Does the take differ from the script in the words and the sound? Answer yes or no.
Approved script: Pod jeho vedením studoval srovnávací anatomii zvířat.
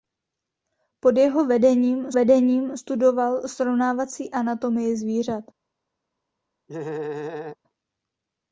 yes